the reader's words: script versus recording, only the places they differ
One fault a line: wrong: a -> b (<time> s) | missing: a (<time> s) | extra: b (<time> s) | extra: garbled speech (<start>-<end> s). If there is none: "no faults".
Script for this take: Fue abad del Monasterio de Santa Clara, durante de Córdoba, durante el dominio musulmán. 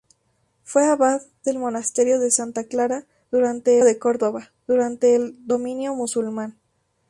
no faults